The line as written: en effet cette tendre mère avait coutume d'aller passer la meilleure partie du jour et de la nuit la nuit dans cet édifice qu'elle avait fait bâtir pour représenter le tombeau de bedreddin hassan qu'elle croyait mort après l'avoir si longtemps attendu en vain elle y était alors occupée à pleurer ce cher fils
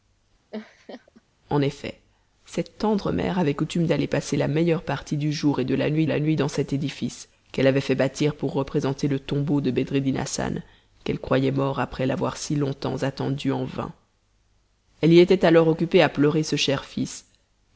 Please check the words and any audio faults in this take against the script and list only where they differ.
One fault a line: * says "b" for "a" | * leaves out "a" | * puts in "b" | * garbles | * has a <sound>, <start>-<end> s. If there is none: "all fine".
* has a laugh, 0.5-1.2 s